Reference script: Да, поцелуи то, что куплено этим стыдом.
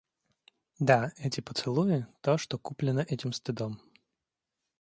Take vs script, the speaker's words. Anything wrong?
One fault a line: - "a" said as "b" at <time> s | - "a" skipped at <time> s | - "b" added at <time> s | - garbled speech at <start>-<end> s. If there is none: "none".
- "эти" added at 1.2 s